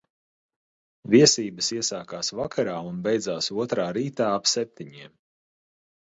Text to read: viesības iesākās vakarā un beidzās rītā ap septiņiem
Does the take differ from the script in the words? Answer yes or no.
yes